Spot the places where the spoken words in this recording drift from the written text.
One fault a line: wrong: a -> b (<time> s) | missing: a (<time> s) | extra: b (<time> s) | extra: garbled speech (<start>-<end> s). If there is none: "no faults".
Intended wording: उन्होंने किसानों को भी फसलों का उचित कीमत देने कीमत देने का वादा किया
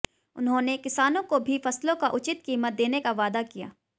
missing: कीमत देने (3.0 s)